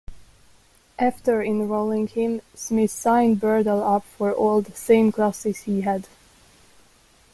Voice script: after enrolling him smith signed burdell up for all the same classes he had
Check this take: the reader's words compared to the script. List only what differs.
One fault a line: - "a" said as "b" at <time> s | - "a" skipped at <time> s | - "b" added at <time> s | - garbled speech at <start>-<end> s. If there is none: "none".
none